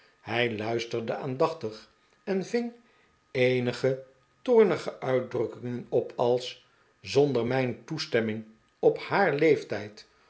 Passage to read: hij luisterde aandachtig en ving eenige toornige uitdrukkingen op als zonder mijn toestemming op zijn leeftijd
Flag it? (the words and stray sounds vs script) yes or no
yes